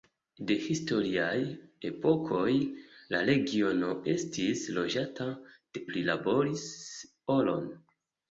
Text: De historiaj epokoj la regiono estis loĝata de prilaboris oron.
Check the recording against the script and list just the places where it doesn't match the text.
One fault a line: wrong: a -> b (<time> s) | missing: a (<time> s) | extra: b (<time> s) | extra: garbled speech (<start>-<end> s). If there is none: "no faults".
no faults